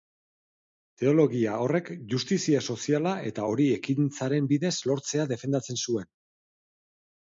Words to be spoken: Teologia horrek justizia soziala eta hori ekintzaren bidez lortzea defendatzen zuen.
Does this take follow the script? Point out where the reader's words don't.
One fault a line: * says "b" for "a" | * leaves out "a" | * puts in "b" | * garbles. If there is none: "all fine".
all fine